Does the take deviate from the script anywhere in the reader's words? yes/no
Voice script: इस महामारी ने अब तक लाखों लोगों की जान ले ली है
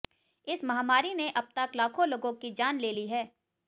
no